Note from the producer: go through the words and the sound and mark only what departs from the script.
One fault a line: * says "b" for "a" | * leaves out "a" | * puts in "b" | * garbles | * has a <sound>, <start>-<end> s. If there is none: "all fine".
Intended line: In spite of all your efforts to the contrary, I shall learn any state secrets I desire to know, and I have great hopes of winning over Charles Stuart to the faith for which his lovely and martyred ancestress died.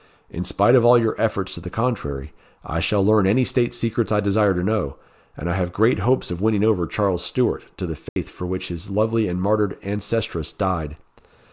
* has a dropout, 8.1-8.2 s